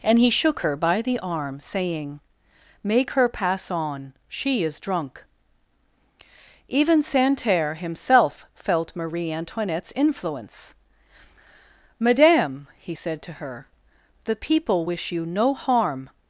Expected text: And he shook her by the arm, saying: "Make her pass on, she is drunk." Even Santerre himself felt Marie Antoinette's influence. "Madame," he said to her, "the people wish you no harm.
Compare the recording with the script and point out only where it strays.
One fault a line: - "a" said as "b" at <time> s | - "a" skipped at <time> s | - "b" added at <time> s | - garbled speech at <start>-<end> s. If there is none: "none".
none